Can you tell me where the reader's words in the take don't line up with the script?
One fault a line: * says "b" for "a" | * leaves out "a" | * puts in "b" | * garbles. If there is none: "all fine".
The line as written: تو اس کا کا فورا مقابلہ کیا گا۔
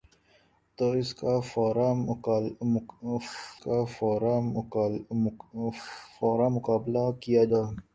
all fine